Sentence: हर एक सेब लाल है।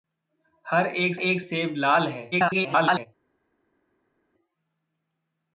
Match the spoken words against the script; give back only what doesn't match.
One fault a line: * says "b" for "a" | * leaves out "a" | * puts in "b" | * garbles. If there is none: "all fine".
* puts in "एक"
* garbles